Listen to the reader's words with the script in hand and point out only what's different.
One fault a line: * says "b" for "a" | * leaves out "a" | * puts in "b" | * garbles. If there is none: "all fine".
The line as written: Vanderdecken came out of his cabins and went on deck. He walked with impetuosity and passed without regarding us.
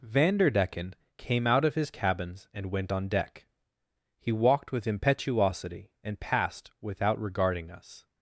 all fine